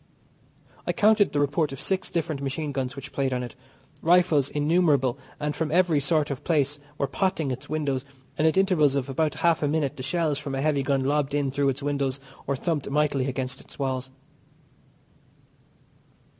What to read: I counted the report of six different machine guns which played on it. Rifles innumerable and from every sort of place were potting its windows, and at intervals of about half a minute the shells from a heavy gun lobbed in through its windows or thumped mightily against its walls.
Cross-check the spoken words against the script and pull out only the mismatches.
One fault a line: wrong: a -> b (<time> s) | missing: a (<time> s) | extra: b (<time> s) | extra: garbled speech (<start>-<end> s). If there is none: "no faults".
no faults